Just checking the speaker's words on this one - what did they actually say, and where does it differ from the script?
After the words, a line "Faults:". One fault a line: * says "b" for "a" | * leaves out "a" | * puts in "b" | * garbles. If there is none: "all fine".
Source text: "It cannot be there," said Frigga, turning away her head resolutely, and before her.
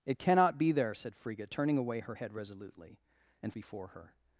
"It cannot be there," said Frigga, turning away her head resolutely, and before her.
Faults:
all fine